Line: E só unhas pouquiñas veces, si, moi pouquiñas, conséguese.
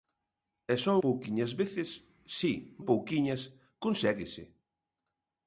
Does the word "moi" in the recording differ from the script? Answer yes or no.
yes